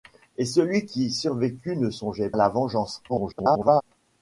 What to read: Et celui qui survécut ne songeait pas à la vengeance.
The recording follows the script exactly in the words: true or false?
false